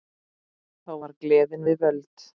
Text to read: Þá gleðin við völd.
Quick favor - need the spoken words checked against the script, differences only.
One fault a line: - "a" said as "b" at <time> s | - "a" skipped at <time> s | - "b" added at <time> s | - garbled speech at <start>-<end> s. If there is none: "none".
- "var" added at 1.0 s